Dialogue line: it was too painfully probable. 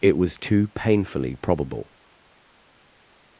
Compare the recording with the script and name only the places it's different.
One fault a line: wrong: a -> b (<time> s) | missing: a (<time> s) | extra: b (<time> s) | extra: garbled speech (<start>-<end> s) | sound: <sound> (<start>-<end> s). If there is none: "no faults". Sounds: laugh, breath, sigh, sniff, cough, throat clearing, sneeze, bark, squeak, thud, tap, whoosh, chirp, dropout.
no faults